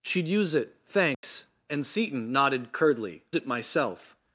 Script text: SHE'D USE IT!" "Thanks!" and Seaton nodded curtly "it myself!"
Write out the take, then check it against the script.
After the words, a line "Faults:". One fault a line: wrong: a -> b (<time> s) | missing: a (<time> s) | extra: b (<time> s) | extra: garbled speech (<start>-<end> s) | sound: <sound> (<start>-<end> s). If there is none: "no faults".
SHE'D USE IT!" "Thanks!" and Seaton nodded curtly "it myself!"
Faults:
sound: dropout (1.1-1.2 s)